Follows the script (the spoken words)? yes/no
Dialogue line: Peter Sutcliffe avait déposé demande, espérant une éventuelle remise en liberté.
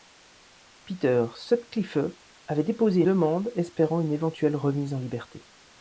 yes